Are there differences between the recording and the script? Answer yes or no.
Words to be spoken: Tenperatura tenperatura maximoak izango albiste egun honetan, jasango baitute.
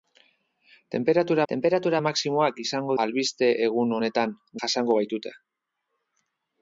no